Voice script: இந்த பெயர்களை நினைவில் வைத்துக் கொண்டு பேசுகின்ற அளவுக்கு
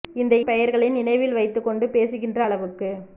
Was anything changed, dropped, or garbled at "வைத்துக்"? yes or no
no